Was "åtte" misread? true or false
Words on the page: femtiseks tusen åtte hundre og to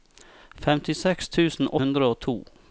true